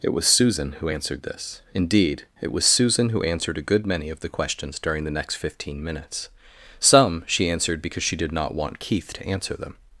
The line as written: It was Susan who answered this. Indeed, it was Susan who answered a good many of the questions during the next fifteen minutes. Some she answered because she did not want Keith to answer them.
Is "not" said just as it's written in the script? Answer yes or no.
yes